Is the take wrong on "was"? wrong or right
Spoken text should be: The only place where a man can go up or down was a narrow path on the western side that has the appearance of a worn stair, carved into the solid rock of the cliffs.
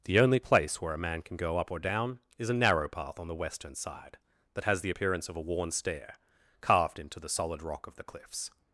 wrong